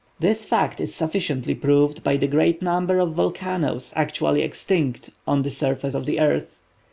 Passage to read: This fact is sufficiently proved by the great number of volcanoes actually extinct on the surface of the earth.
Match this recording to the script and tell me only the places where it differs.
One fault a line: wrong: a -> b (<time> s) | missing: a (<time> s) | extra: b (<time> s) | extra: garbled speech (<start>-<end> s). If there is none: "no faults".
no faults